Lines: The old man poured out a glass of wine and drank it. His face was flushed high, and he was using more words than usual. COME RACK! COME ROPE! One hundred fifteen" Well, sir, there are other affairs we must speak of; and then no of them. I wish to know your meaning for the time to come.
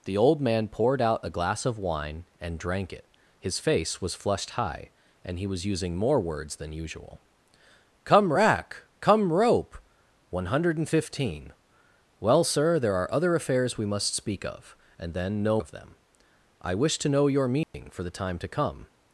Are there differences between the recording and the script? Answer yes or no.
no